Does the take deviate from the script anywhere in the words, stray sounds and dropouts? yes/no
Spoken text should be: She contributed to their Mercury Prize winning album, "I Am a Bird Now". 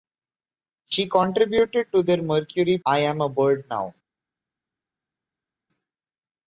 yes